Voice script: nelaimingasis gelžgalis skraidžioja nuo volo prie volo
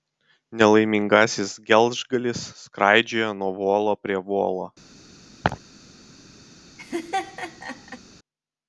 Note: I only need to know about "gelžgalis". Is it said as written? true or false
true